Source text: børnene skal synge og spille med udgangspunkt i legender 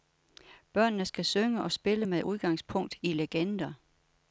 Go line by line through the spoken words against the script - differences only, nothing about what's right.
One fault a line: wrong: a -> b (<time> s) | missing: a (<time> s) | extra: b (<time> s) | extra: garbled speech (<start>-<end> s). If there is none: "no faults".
no faults